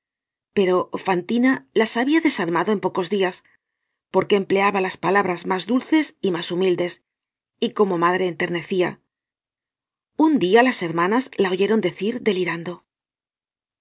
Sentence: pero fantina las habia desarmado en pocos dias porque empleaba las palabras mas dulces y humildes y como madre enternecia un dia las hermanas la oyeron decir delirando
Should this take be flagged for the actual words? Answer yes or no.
yes